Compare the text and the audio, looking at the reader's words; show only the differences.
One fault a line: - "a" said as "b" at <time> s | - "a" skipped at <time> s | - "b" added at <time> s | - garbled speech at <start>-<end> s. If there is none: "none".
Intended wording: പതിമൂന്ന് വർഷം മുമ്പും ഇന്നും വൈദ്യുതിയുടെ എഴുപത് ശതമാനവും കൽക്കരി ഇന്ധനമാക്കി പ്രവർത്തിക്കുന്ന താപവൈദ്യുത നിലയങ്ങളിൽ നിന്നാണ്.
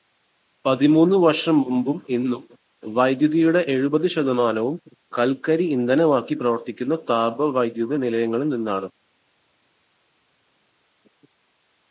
none